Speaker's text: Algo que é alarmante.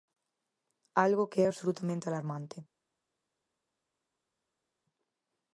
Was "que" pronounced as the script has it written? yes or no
yes